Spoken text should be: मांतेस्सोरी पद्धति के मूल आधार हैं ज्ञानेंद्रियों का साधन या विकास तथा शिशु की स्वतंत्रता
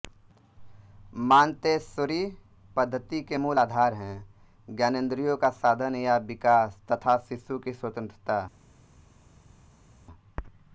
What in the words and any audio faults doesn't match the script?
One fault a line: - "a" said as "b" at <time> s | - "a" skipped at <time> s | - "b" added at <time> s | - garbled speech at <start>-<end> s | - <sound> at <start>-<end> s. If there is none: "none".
none